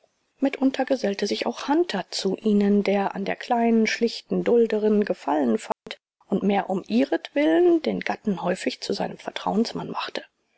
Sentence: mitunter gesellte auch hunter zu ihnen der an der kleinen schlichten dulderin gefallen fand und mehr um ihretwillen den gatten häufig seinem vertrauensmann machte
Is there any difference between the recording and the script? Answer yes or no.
yes